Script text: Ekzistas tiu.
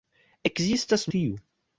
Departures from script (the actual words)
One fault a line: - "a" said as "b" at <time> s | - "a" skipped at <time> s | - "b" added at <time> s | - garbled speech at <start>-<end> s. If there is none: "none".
none